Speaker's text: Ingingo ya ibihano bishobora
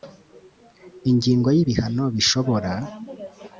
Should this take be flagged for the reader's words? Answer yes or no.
no